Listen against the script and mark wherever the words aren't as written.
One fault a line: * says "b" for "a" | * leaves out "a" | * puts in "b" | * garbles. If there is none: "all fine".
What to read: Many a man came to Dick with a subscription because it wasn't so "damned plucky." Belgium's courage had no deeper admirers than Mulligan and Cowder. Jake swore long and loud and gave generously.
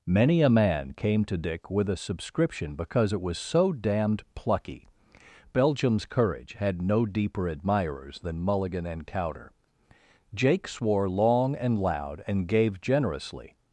* says "was" for "wasn't"